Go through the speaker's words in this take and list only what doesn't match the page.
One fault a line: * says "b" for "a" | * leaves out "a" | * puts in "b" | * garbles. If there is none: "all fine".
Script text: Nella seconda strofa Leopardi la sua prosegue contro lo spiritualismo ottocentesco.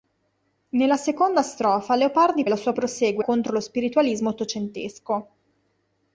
all fine